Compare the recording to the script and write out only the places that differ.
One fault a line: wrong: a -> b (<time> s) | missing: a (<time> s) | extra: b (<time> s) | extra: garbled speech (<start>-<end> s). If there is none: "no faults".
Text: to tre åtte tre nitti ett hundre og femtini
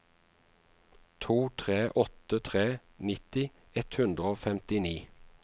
no faults